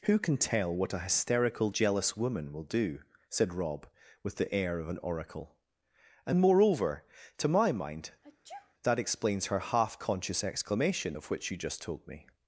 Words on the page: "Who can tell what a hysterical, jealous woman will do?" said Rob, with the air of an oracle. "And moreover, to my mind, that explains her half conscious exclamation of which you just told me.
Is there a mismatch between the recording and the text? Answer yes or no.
no